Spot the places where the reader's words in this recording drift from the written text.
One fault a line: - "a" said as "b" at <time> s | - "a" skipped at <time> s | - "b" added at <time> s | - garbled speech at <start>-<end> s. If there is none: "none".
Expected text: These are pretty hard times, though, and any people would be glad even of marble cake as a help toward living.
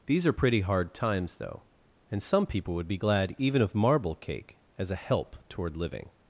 - "any" said as "some" at 2.2 s